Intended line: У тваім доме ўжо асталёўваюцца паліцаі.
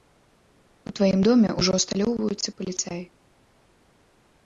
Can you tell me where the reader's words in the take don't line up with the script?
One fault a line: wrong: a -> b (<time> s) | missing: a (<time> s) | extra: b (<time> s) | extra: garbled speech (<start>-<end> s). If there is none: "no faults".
no faults